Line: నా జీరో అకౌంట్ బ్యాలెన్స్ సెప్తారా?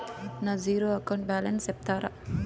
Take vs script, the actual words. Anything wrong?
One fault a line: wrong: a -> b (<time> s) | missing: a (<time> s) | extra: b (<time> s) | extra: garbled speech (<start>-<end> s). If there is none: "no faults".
no faults